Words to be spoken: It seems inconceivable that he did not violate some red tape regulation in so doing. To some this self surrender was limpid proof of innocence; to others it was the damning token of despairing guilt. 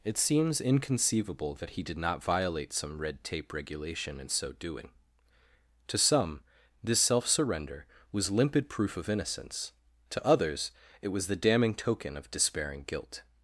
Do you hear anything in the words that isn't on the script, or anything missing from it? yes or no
no